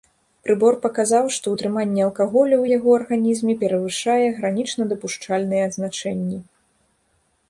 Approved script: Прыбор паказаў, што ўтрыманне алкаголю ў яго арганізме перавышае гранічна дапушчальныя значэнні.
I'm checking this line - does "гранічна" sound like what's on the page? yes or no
yes